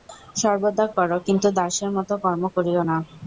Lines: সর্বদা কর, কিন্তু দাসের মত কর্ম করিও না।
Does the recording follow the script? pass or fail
pass